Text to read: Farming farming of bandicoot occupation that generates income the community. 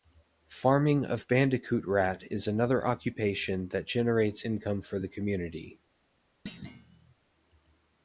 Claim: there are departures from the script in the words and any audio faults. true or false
true